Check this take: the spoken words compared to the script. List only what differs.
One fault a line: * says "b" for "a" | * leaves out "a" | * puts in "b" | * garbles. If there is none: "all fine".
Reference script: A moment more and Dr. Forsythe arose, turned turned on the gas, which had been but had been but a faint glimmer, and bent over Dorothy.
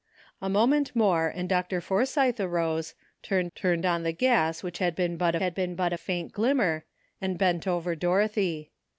all fine